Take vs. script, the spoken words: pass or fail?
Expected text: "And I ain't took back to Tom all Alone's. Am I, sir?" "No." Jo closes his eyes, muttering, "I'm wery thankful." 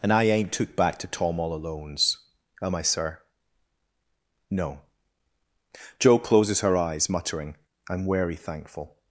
fail